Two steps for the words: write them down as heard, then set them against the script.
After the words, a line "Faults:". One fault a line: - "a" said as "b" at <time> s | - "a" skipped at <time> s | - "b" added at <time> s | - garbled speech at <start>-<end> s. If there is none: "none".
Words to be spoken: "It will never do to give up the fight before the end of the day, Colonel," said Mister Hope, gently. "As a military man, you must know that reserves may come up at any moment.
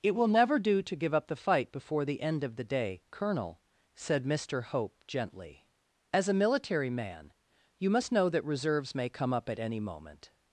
"It will never do to give up the fight before the end of the day, Colonel," said Mister Hope, gently. "As a military man, you must know that reserves may come up at any moment.
Faults:
none